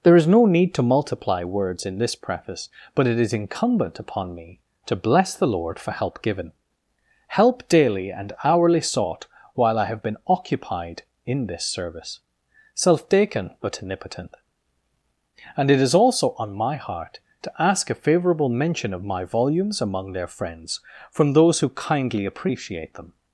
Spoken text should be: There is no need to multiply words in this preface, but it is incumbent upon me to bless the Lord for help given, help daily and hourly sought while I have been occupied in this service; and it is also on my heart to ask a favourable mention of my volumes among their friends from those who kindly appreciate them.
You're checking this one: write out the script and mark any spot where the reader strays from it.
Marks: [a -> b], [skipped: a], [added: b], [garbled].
There is no need to multiply words in this preface, but it is incumbent upon me to bless the Lord for help given, help daily and hourly sought while I have been occupied in this service; [added: self taken but omnipotent] and it is also on my heart to ask a favourable mention of my volumes among their friends from those who kindly appreciate them.